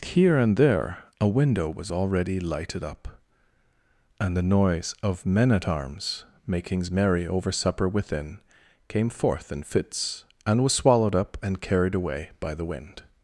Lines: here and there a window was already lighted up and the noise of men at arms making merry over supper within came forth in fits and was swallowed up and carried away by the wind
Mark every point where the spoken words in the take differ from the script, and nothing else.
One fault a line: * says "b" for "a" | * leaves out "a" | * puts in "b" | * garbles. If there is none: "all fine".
* says "makings" for "making"